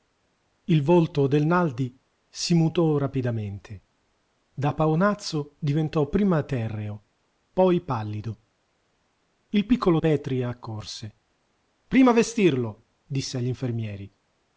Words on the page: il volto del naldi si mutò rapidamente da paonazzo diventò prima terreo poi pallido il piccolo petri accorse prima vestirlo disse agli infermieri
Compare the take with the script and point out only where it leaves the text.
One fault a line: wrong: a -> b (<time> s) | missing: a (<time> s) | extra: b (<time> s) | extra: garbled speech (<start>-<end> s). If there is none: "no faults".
no faults